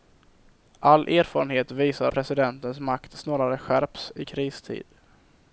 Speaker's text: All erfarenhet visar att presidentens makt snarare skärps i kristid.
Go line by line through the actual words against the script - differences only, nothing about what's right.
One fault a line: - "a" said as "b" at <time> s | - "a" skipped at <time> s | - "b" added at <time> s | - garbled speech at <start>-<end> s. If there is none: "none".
- "att" skipped at 2.1 s